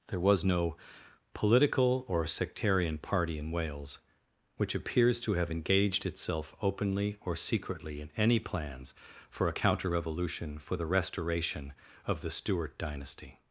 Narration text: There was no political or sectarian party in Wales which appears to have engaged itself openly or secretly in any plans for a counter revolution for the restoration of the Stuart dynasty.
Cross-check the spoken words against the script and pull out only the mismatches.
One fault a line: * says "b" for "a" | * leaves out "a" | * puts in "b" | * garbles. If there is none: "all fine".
all fine